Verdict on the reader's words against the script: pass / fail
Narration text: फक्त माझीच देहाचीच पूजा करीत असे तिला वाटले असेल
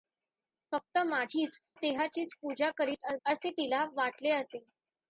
pass